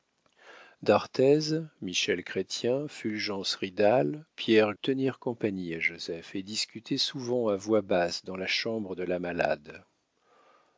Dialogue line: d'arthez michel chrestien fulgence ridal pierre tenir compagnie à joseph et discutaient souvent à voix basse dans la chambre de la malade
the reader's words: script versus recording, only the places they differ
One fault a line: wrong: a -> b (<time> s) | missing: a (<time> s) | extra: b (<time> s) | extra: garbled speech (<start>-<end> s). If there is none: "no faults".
no faults